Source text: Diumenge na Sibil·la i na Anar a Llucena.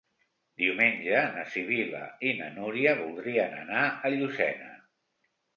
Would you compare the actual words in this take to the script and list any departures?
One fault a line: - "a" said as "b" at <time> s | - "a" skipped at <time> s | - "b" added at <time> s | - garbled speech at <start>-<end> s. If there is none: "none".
- "Núria voldrien" added at 2.6 s